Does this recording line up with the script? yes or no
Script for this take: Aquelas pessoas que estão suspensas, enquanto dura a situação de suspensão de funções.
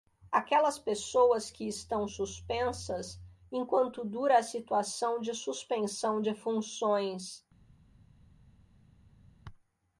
yes